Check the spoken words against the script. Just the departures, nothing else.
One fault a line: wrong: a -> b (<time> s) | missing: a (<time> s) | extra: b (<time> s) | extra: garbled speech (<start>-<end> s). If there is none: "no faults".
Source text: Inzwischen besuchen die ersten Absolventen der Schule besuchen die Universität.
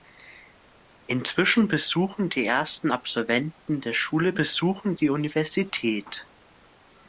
no faults